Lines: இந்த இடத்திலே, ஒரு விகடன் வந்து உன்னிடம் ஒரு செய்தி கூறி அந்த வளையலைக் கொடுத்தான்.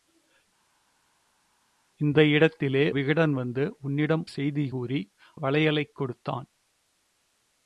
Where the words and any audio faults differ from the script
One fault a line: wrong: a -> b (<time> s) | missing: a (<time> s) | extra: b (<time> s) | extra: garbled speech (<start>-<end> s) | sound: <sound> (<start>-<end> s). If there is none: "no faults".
missing: ஒரு (2.9 s)
missing: ஒரு (4.2 s)
missing: அந்த (5.0 s)